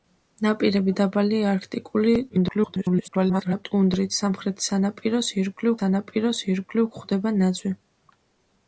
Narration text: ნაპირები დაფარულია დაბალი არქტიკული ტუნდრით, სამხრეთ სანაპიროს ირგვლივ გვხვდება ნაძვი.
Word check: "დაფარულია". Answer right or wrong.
wrong